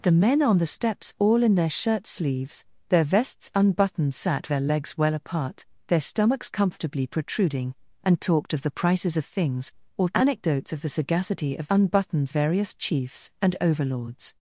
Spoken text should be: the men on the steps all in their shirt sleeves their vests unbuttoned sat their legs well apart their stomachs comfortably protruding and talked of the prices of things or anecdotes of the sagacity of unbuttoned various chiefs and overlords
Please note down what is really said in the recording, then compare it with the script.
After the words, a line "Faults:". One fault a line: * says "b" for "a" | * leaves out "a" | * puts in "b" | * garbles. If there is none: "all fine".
the men on the steps all in their shirt sleeves their vests unbuttoned sat their legs well apart their stomachs comfortably protruding and talked of the prices of things or anecdotes of the sagacity of unbuttoned various chiefs and overlords
Faults:
all fine